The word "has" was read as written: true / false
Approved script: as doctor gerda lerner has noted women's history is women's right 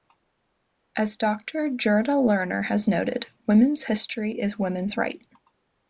true